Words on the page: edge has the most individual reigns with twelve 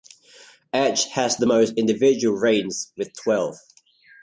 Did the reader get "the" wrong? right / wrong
right